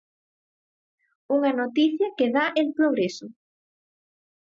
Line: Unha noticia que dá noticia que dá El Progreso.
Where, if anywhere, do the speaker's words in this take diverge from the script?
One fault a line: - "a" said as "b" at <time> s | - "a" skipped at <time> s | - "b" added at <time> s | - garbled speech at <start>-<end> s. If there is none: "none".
- "noticia que dá" skipped at 2.5 s